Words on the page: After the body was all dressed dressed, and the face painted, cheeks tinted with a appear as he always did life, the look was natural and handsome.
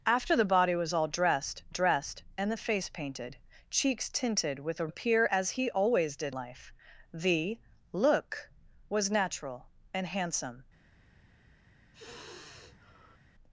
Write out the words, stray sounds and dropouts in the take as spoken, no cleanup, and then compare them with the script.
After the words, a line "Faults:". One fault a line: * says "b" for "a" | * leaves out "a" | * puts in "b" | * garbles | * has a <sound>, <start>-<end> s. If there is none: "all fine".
After the body was all dressed dressed, and the face painted, cheeks tinted with a appear as he always did life, the look was natural and handsome.
Faults:
* has a sigh, 11.9-13.2 s